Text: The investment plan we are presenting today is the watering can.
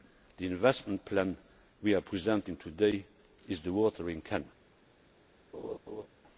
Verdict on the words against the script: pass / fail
pass